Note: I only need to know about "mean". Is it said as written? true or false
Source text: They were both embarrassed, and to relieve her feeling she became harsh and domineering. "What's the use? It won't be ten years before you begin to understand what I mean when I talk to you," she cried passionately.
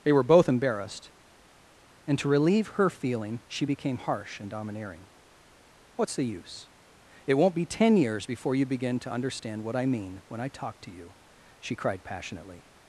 true